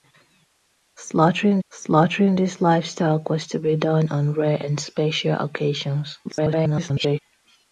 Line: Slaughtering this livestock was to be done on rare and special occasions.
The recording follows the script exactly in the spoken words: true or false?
false